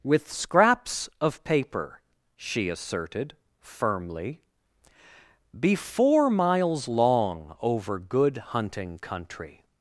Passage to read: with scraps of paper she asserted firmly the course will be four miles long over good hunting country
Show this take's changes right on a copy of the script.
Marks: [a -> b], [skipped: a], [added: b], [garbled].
with scraps of paper she asserted firmly [skipped: the course will] be four miles long over good hunting country